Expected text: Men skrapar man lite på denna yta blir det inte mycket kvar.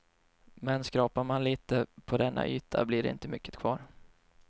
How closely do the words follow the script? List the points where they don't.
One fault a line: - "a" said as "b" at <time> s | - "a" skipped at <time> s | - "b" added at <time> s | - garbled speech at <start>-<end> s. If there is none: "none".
none